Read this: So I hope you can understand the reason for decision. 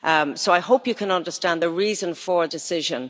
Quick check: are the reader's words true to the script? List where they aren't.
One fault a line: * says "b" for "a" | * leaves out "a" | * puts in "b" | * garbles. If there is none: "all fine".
all fine